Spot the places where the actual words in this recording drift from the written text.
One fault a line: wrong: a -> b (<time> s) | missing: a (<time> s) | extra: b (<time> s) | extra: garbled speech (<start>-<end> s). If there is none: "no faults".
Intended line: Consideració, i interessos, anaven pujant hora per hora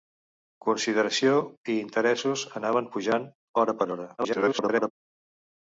extra: garbled speech (4.2-4.9 s)